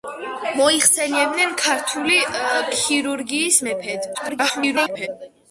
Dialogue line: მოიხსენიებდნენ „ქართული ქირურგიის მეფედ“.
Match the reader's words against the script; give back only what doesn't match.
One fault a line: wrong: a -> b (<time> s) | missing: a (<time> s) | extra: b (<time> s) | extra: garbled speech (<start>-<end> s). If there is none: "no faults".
extra: garbled speech (4.1-5.1 s)